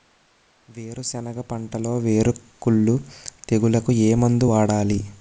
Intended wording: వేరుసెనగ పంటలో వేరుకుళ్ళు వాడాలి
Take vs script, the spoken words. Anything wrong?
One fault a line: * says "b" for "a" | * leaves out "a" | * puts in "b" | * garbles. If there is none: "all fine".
* puts in "తెగులుకు ఏ మందు"